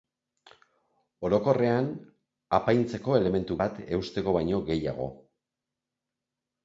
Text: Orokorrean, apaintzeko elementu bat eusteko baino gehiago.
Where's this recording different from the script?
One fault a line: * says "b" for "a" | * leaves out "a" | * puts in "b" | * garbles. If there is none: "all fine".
all fine